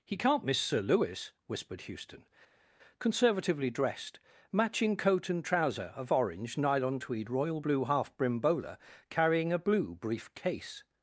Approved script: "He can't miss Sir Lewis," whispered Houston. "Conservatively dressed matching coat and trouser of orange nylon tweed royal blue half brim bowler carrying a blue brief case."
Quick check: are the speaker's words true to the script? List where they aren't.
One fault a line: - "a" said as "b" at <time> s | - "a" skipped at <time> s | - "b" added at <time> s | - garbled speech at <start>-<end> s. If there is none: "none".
none